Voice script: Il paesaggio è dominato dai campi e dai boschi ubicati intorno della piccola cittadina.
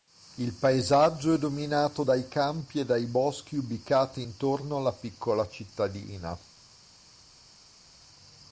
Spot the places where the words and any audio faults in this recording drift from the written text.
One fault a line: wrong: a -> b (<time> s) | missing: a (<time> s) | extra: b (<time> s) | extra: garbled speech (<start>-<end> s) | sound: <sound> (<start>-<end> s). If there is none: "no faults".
wrong: della -> alla (4.8 s)